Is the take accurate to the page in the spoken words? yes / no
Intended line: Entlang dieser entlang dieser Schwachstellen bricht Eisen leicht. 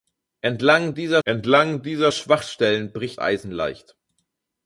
yes